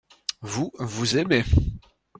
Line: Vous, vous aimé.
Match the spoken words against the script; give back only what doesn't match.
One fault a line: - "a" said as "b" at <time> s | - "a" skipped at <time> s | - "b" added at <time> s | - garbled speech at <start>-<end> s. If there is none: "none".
none